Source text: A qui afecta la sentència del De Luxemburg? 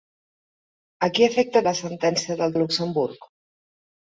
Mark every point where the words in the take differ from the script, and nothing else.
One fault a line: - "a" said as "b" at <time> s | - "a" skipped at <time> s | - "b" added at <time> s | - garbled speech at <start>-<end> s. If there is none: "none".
none